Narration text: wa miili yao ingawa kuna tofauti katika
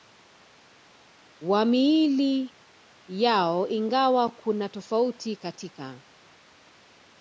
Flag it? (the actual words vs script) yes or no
no